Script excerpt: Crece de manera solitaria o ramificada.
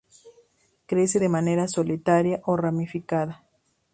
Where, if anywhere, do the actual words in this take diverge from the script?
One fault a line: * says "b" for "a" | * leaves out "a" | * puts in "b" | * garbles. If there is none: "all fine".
all fine